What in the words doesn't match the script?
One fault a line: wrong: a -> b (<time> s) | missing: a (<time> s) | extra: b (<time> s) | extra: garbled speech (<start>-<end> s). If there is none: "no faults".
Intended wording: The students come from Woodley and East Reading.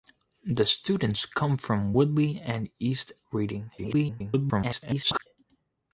extra: garbled speech (3.8-5.3 s)